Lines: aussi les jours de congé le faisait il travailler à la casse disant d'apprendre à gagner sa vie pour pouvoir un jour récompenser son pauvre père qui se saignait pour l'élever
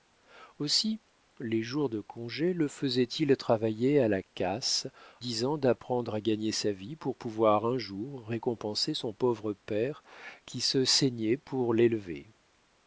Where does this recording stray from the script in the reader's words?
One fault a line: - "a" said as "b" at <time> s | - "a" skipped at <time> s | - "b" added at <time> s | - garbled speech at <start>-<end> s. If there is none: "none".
none